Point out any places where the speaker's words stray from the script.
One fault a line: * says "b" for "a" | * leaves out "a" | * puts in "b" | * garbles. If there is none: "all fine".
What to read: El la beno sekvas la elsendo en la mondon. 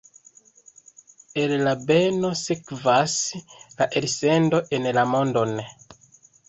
all fine